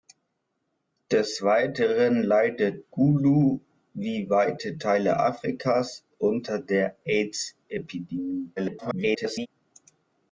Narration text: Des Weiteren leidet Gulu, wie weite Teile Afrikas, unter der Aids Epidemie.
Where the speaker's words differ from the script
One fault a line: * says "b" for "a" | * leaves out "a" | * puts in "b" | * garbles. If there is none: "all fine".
* garbles